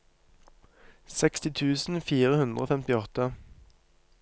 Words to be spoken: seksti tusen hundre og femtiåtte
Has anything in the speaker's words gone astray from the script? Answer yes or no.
yes